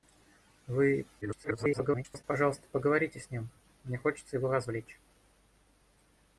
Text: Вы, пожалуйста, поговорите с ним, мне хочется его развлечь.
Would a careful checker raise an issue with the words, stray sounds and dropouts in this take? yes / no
yes